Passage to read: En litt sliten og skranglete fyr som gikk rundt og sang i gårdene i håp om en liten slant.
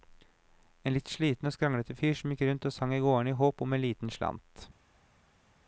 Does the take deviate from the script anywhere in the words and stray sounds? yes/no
no